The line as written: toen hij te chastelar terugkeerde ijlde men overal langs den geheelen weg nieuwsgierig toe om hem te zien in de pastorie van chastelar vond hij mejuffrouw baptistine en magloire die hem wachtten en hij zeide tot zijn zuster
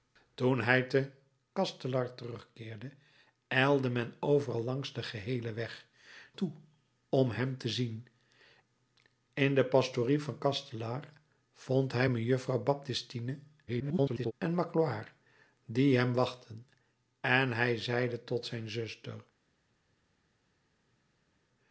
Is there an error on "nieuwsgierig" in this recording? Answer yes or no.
yes